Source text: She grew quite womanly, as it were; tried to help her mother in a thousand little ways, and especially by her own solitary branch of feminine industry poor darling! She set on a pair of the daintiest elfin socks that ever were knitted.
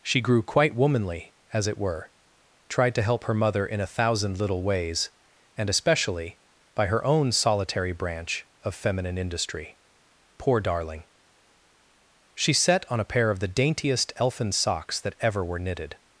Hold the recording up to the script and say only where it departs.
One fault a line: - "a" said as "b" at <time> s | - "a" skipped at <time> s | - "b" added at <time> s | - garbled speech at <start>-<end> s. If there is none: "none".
none